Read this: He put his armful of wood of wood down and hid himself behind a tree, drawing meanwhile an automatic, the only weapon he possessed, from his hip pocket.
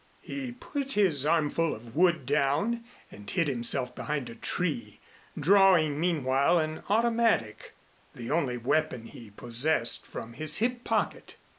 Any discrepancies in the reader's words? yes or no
yes